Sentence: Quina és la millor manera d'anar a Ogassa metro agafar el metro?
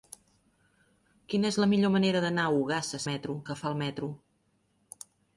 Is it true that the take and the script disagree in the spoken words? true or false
false